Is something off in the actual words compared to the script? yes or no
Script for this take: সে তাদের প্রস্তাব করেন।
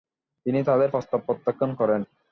yes